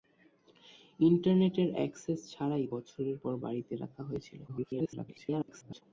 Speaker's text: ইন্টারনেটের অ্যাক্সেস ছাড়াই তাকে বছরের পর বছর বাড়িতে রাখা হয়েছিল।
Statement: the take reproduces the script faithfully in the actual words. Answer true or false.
false